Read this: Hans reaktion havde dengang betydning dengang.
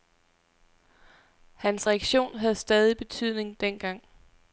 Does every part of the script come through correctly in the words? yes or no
no